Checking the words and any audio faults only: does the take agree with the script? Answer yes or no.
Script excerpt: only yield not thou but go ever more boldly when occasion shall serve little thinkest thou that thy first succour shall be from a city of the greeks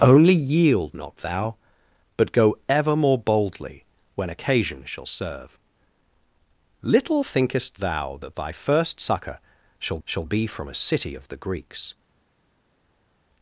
no